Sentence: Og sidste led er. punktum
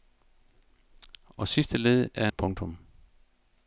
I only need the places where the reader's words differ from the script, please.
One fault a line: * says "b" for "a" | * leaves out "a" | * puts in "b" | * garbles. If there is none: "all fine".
all fine